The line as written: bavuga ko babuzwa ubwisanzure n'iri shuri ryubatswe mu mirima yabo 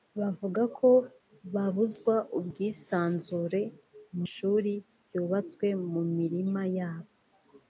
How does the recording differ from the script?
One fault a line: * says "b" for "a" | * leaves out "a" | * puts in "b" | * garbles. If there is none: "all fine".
* leaves out "n'iri"